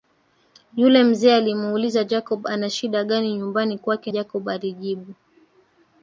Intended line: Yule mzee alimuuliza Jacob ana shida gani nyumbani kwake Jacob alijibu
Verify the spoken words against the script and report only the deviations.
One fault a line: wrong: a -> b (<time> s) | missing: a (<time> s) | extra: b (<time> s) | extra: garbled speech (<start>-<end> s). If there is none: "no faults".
no faults